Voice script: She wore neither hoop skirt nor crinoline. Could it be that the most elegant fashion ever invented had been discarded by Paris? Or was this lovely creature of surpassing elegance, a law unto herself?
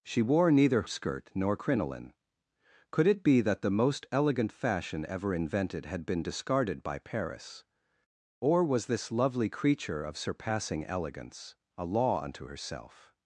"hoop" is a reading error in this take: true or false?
true